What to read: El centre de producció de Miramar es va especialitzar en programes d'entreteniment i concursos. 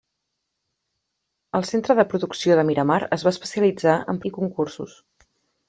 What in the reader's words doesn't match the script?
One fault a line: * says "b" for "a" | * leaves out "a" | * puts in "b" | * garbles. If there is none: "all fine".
* leaves out "programes d'entreteniment"